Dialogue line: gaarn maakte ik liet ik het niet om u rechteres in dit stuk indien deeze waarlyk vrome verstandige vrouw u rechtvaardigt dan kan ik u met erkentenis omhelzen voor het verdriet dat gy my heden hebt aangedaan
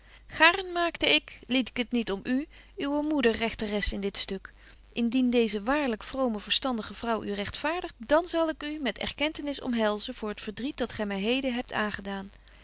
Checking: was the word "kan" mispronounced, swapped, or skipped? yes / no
yes